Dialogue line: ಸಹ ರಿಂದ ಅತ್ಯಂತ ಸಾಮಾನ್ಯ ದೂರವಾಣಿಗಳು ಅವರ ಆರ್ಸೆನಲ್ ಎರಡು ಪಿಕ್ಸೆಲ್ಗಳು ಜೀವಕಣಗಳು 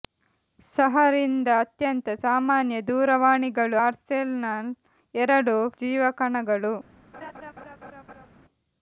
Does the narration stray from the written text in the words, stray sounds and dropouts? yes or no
yes